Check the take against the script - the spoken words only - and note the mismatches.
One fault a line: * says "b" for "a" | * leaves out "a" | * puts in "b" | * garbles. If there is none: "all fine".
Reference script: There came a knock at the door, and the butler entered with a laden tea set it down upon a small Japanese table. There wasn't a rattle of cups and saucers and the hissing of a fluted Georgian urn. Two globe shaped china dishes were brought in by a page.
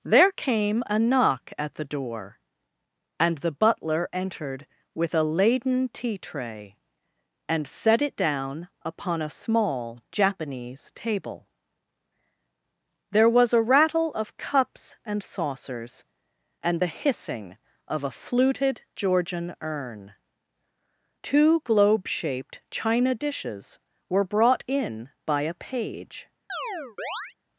* puts in "tray and"
* says "was" for "wasn't"